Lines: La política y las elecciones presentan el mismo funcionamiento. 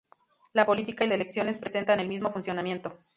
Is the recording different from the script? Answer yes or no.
yes